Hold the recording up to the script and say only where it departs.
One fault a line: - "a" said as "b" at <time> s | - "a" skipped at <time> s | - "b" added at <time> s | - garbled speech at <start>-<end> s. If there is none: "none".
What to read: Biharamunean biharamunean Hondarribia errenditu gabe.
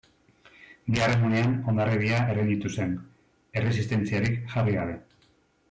- "biharamunean" skipped at 1.5 s
- "zen erresistentziarik jarri" added at 2.8 s